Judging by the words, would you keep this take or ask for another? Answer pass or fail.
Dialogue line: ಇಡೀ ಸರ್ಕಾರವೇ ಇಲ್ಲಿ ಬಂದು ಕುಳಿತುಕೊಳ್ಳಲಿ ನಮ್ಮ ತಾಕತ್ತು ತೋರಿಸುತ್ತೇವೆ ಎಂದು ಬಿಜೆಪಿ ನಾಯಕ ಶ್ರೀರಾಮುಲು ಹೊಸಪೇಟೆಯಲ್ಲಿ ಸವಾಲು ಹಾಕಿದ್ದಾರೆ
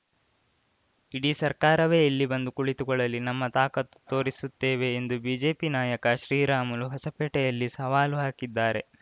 pass